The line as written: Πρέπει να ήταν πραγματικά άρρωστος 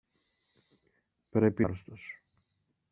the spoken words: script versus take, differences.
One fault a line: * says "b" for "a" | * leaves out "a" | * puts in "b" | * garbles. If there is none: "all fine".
* leaves out "να ήταν πραγματικά"